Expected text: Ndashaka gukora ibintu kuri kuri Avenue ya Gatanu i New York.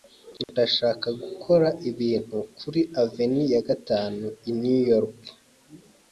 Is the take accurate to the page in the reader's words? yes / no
no